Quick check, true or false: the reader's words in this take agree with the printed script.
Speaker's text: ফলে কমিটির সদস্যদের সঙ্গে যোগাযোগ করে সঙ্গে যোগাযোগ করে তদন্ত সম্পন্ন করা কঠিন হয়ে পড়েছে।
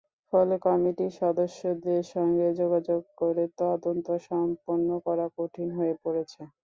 false